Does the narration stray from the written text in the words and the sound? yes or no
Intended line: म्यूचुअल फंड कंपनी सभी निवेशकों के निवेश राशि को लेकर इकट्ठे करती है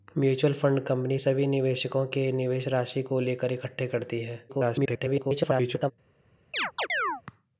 yes